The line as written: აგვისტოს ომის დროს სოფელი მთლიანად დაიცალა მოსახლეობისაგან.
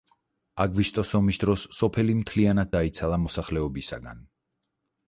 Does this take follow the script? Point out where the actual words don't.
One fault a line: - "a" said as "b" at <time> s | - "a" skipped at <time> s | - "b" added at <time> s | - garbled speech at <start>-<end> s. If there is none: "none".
none